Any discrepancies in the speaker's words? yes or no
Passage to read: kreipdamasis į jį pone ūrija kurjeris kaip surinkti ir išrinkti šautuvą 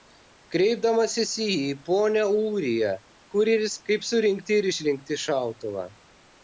no